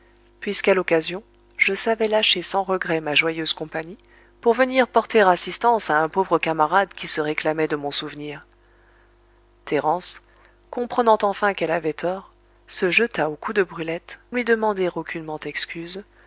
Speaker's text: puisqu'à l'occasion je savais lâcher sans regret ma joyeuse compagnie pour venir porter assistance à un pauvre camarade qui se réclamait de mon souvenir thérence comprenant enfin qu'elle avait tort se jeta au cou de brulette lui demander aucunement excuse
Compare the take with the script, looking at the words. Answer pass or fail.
pass